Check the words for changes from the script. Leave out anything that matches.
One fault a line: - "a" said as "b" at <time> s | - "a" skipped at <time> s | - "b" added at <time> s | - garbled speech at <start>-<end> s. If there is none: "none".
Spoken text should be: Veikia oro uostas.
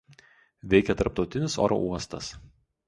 - "tarptautinis" added at 1.0 s